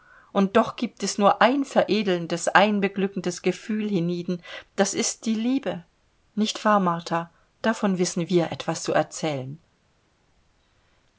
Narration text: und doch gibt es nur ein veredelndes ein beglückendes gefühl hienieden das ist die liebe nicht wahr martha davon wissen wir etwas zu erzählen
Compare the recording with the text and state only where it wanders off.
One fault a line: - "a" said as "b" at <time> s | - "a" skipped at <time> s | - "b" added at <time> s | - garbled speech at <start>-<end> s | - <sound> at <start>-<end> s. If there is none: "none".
none